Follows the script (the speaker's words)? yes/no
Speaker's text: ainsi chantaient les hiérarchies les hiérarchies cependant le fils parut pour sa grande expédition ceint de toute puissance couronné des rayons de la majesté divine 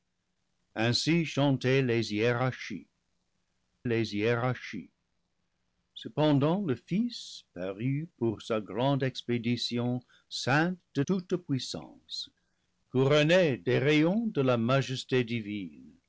yes